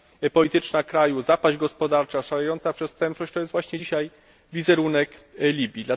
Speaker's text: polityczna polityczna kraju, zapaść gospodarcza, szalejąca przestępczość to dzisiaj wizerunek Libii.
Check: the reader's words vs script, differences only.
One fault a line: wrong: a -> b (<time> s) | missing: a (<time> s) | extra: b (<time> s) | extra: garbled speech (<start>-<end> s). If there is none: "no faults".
missing: polityczna (0.8 s)
extra: jest właśnie (3.4 s)